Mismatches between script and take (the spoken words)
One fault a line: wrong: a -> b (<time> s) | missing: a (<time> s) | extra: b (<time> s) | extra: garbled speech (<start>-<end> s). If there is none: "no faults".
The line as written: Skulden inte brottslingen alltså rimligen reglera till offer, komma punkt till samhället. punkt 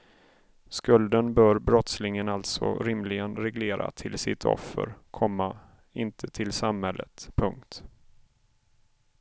wrong: inte -> bör (1.3 s)
extra: sitt (4.2 s)
wrong: punkt -> inte (5.9 s)